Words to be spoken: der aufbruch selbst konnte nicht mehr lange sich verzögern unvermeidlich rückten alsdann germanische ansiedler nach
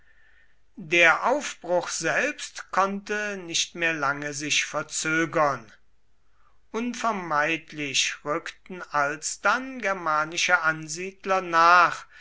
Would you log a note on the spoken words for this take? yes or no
no